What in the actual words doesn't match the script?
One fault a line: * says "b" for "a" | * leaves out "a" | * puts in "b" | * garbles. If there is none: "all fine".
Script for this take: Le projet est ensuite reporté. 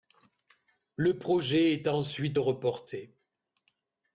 all fine